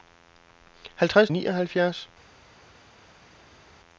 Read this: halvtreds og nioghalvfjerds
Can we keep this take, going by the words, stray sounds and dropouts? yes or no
yes